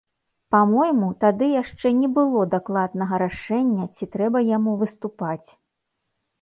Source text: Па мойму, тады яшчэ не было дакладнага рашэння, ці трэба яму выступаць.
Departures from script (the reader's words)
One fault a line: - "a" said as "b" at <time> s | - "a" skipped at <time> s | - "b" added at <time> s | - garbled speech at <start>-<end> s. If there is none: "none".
none